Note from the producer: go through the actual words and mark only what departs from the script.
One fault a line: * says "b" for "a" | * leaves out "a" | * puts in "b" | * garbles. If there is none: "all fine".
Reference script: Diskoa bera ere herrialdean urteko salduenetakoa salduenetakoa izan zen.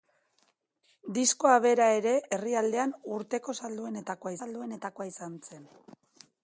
all fine